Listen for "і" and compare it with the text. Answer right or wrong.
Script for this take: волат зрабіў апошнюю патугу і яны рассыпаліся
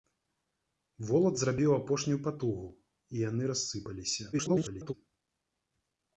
right